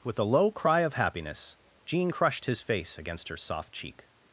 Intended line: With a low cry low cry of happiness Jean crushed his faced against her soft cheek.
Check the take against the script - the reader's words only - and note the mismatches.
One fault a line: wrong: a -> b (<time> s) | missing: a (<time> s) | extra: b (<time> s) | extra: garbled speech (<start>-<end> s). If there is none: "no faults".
missing: low cry (0.8 s)
wrong: faced -> face (2.6 s)